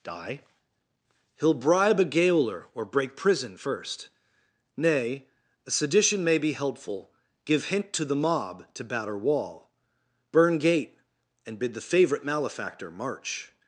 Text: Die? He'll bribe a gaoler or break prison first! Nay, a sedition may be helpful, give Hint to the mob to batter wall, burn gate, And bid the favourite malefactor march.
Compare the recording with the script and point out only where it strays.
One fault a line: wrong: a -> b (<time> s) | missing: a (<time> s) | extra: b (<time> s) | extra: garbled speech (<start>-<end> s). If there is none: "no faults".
no faults